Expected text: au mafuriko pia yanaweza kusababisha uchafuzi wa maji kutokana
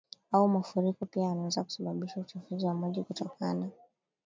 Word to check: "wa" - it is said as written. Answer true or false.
true